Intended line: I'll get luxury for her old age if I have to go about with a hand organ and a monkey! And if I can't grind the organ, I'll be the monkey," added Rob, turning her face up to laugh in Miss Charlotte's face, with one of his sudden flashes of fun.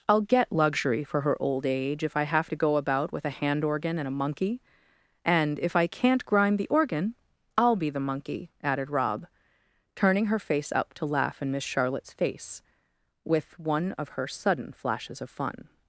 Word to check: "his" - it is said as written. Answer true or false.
false